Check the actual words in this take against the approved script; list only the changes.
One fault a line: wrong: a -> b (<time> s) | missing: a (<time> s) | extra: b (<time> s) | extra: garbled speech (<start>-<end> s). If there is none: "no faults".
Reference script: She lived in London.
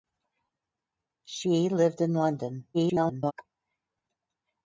extra: garbled speech (2.7-3.3 s)